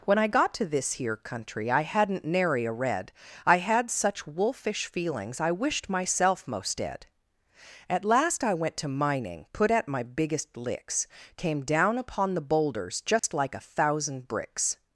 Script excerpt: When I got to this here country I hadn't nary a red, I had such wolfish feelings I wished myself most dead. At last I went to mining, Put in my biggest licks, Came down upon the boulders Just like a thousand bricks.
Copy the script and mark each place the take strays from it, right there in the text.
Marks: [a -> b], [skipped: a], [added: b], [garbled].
When I got to this here country I hadn't nary a red, I had such wolfish feelings I wished myself most dead. At last I went to mining, Put [in -> at] my biggest licks, Came down upon the boulders Just like a thousand bricks.